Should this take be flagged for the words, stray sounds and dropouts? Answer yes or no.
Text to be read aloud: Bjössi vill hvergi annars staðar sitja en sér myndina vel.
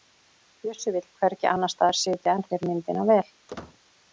yes